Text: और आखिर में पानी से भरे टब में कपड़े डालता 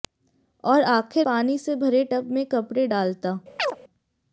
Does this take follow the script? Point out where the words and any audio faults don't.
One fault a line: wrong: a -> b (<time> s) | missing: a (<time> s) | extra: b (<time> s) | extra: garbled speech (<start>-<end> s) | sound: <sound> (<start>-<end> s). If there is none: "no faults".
missing: में (1.3 s)
sound: chirp (3.6-3.8 s)